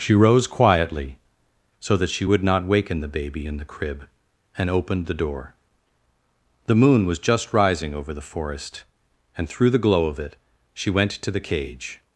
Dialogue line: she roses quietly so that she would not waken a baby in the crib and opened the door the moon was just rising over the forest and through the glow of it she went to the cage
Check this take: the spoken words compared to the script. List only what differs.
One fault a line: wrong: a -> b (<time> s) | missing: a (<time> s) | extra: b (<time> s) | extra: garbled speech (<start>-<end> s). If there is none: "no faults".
wrong: roses -> rose (0.1 s)
wrong: a -> the (3.0 s)